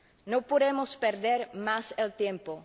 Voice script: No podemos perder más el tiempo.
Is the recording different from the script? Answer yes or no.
no